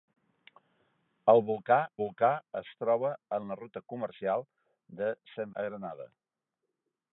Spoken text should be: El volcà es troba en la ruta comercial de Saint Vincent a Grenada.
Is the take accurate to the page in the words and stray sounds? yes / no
no